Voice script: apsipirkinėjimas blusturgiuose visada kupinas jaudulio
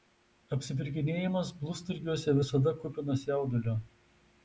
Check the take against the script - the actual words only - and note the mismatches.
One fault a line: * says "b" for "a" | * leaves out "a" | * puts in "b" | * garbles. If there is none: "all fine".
all fine